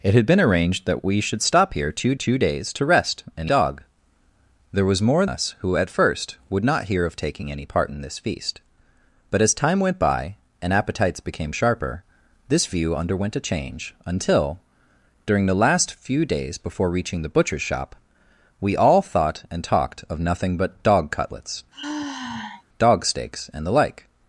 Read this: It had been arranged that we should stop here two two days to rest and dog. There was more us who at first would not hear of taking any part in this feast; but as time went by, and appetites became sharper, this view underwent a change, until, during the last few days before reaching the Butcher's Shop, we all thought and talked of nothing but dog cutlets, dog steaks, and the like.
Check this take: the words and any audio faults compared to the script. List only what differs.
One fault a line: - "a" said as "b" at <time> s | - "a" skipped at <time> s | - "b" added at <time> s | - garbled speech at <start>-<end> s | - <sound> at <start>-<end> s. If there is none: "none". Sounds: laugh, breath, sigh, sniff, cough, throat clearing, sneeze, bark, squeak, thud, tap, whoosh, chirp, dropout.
- sigh at 21.7-22.6 s